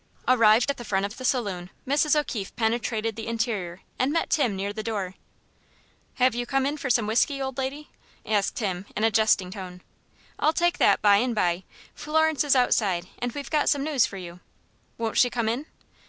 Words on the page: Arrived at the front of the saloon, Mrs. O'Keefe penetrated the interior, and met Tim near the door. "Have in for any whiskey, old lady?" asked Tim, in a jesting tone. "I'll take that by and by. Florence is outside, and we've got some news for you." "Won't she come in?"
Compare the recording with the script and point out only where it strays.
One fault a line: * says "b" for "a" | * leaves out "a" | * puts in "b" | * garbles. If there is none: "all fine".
* puts in "you come"
* says "some" for "any"